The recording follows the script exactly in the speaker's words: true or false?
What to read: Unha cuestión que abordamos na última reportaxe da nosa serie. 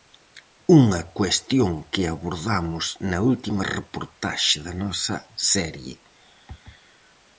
true